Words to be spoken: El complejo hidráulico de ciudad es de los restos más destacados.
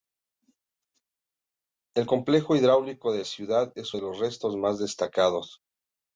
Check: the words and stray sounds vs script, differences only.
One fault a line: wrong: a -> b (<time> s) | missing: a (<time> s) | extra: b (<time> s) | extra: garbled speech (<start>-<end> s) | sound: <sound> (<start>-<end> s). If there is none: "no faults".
no faults